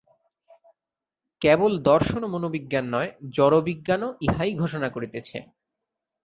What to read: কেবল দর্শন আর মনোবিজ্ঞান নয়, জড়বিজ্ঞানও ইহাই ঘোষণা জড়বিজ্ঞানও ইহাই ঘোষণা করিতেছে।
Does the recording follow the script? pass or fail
fail